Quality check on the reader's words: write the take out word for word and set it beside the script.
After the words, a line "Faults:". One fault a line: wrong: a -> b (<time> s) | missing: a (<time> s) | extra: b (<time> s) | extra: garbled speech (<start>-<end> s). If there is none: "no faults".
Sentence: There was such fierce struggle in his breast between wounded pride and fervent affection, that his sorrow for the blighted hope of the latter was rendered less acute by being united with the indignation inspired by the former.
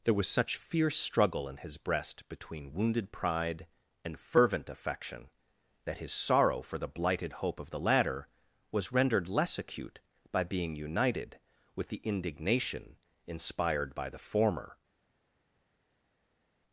There was such fierce struggle in his breast between wounded pride and fervent affection, that his sorrow for the blighted hope of the latter was rendered less acute by being united with the indignation inspired by the former.
Faults:
no faults